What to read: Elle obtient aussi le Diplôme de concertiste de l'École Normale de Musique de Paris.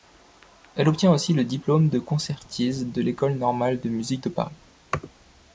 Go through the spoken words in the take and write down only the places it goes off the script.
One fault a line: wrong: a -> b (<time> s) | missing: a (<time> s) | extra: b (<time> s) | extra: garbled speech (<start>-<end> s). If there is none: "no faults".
no faults